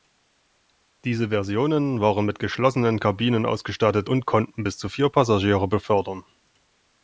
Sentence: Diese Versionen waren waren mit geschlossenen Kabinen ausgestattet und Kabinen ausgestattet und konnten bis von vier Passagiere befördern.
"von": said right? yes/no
no